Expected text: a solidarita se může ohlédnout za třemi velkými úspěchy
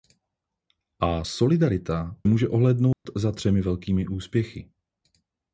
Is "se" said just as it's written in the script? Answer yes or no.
no